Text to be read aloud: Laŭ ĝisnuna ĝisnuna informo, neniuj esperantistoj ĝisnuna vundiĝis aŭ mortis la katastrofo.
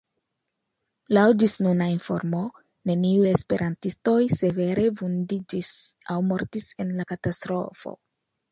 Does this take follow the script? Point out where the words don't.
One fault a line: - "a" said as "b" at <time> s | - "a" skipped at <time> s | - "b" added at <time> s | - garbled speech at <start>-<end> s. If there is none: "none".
- "ĝisnuna" skipped at 1.9 s
- "ĝisnuna" said as "severe" at 4.4 s
- "en" added at 6.9 s